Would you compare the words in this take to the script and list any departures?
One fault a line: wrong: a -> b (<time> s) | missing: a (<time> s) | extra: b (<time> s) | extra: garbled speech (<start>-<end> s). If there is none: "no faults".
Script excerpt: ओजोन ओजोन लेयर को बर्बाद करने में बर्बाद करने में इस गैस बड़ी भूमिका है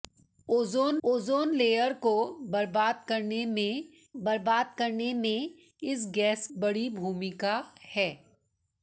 no faults